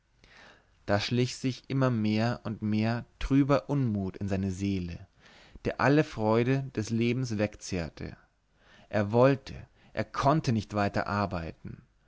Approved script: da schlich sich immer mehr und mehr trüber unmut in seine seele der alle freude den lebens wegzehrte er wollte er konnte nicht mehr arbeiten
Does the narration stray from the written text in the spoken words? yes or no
yes